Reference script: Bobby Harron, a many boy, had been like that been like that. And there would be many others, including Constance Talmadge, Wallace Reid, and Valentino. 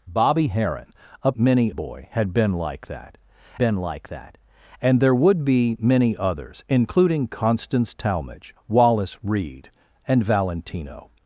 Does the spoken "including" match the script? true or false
true